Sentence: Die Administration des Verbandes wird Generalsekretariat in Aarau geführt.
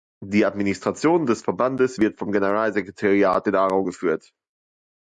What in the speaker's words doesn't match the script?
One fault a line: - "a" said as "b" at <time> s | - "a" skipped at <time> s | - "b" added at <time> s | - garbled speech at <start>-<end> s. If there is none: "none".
- "vom" added at 2.2 s